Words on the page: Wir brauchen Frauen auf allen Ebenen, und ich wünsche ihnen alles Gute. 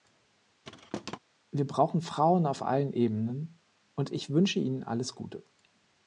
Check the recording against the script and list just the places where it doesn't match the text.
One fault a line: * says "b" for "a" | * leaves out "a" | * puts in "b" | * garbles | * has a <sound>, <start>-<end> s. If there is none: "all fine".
* has a thud, 0.6-1.2 s